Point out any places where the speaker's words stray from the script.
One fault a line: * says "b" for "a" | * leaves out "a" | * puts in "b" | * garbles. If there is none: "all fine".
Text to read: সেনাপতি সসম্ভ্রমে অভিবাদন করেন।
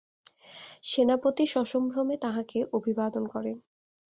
* puts in "তাঁহাকে"